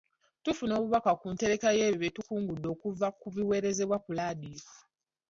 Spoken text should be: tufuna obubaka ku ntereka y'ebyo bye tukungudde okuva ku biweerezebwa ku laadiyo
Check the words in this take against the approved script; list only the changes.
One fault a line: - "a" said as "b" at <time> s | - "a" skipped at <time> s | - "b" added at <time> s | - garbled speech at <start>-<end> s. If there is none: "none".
none